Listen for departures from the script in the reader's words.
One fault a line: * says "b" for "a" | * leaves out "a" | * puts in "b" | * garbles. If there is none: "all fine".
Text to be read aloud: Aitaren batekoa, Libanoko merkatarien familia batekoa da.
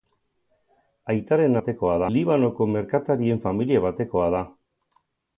all fine